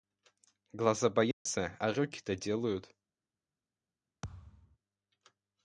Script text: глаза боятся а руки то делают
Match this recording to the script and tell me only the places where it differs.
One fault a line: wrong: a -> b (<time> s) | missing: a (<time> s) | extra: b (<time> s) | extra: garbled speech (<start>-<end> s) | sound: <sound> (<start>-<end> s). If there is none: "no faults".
sound: dropout (1.3-1.5 s)
sound: thud (4.2-4.8 s)